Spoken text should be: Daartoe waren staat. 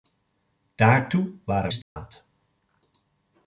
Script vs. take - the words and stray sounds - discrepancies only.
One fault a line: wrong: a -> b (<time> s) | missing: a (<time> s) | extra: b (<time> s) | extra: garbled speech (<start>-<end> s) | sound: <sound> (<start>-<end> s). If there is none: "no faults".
sound: dropout (1.8-2.0 s)